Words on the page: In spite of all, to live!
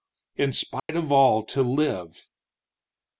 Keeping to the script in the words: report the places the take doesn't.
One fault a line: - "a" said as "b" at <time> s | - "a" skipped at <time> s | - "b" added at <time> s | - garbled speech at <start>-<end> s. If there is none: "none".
none